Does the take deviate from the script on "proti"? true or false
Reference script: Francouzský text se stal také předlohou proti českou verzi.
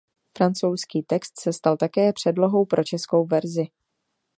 true